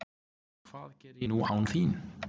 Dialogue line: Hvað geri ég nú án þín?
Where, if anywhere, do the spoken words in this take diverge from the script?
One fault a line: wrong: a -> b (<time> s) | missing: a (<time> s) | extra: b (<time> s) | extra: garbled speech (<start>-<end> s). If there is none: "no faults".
missing: ég (1.3 s)